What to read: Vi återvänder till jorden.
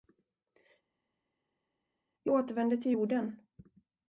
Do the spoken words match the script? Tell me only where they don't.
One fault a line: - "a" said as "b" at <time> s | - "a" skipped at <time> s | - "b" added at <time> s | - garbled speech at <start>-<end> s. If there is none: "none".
none